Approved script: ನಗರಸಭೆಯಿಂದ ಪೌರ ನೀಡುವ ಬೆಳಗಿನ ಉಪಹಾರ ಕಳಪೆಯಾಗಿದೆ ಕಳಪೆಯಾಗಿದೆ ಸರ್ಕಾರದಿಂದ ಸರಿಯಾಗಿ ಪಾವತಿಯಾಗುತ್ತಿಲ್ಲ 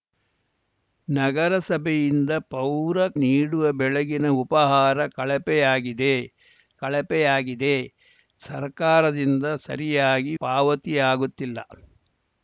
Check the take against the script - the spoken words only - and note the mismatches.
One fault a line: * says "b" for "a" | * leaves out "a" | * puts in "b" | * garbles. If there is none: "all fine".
all fine